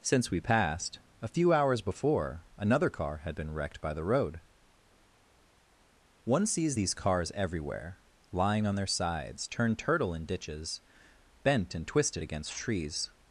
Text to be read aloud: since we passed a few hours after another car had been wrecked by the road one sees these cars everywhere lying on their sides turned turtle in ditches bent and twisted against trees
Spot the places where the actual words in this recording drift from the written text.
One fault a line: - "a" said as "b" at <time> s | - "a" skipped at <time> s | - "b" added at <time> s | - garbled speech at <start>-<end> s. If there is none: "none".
- "after" said as "before" at 1.8 s